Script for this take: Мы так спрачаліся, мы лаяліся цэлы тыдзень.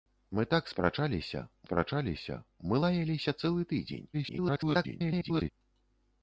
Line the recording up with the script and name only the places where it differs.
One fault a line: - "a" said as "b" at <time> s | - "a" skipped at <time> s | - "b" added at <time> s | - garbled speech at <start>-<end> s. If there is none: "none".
- "спрачаліся" added at 1.6 s
- garbled speech at 4.1-5.5 s